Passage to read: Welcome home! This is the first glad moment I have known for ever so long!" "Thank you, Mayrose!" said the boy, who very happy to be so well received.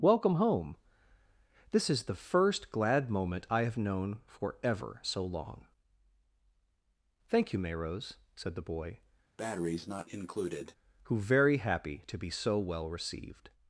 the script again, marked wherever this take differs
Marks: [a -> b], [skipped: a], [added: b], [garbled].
Welcome home! This is the first glad moment I have known for ever so long!" "Thank you, Mayrose!" said the boy, who very happy to be so well received.